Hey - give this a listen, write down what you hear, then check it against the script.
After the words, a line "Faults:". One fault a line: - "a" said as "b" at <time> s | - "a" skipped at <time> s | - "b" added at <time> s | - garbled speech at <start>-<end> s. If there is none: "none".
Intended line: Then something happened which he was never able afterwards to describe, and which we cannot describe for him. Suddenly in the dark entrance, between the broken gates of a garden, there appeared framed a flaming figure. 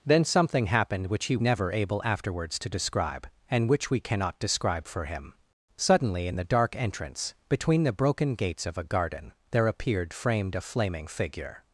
Then something happened which he never able afterwards to describe, and which we cannot describe for him. Suddenly in the dark entrance, between the broken gates of a garden, there appeared framed a flaming figure.
Faults:
- "was" skipped at 1.4 s